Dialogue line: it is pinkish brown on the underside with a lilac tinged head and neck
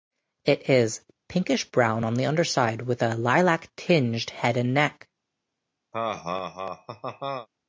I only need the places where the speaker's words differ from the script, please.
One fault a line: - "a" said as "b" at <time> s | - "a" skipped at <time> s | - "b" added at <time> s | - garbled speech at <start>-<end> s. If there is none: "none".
none